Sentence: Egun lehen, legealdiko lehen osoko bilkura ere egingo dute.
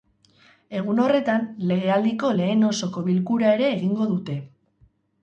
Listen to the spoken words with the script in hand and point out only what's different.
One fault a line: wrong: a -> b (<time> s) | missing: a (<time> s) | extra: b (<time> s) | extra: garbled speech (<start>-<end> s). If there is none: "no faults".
wrong: lehen -> horretan (1.0 s)